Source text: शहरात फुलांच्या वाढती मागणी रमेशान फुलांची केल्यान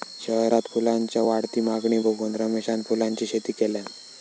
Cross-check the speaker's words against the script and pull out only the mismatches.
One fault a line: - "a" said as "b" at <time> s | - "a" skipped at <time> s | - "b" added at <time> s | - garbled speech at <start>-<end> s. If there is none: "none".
- "बघून" added at 2.0 s
- "शेती" added at 3.3 s